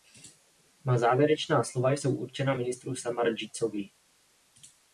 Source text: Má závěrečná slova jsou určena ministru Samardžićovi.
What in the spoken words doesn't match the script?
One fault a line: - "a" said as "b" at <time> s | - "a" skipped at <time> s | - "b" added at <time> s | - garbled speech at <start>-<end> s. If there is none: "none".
none